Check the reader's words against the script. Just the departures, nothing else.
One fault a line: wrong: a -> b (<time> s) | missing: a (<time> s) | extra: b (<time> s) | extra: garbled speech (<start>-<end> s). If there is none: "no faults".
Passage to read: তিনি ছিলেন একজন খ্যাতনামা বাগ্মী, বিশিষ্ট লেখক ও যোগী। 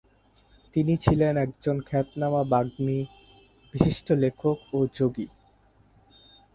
no faults